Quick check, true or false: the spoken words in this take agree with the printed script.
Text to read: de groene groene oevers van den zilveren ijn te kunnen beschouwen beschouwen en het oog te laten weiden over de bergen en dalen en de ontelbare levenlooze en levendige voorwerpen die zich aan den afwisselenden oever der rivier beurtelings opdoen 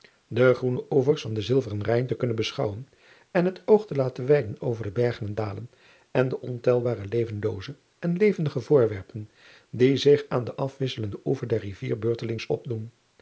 false